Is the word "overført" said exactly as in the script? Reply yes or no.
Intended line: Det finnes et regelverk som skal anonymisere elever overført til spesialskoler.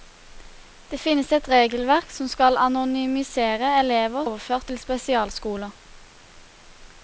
yes